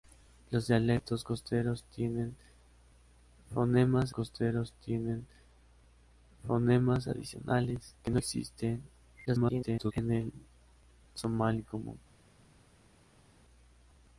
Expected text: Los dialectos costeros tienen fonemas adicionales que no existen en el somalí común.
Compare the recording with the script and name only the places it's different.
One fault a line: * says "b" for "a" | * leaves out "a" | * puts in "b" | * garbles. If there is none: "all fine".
* puts in "costeros tienen fonemas"
* garbles